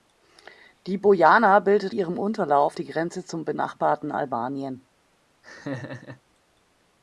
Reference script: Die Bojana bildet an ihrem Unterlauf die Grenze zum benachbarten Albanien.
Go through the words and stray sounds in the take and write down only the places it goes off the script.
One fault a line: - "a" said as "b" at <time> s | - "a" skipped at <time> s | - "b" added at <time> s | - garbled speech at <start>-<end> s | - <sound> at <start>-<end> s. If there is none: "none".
- "an" skipped at 1.9 s
- laugh at 5.4-6.2 s